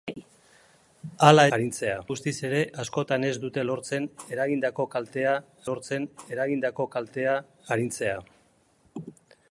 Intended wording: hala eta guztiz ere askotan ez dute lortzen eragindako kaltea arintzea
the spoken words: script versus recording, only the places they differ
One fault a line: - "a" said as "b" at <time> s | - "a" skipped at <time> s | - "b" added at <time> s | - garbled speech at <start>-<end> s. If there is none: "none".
- "eta" said as "arintzea" at 1.6 s
- "lortzen eragindako kaltea" added at 5.7 s